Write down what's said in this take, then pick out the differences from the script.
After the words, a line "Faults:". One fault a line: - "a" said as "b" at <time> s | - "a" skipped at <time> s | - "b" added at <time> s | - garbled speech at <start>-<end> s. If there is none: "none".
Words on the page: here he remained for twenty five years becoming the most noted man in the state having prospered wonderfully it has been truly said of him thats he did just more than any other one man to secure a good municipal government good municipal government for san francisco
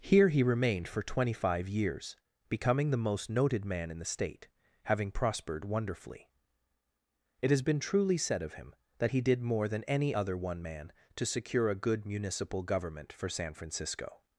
here he remained for twenty five years becoming the most noted man in the state having prospered wonderfully it has been truly said of him that he did more than any other one man to secure a good municipal government for san francisco
Faults:
- "thats" said as "that" at 9.0 s
- "just" skipped at 9.4 s
- "good municipal government" skipped at 13.1 s